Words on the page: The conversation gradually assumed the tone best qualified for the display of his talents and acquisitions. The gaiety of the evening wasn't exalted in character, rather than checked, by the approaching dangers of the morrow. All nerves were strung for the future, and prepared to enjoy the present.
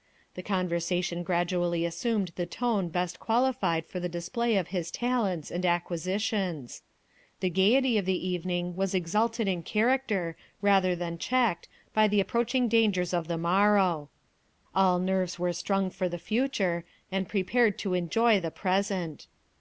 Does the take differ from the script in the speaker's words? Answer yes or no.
yes